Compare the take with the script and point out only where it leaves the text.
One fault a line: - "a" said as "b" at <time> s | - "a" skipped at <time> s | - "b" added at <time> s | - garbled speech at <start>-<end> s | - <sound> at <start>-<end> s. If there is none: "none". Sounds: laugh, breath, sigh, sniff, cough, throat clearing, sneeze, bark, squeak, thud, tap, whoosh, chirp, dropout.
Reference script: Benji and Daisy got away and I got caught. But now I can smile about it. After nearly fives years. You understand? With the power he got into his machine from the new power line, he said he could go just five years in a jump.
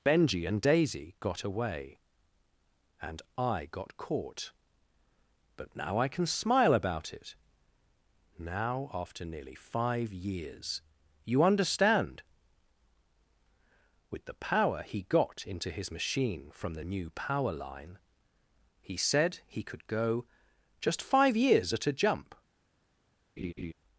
- "Now" added at 8.4 s
- "fives" said as "five" at 9.6 s
- "in" said as "at" at 21.7 s
- laugh at 23.4-23.7 s